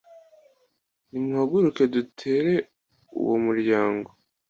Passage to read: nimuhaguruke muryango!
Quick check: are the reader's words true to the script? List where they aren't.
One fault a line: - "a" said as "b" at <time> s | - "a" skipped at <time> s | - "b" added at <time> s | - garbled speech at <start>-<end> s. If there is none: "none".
- "dutere uwo" added at 1.9 s